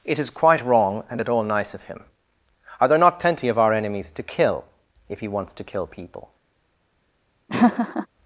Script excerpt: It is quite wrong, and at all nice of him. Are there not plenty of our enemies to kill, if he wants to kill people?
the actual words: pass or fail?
pass